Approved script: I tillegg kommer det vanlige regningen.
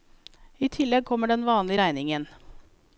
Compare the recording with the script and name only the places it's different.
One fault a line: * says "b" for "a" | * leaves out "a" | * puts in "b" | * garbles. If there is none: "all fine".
* says "den" for "det"